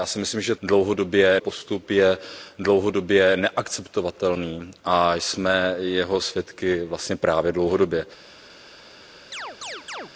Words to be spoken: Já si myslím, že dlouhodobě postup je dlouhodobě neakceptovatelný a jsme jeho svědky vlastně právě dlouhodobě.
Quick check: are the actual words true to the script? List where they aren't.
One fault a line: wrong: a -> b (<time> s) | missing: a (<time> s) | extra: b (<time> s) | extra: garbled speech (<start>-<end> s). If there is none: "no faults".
no faults